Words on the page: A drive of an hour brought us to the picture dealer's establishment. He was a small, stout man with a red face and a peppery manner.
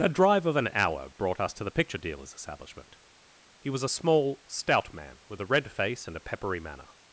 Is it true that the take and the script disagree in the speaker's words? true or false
false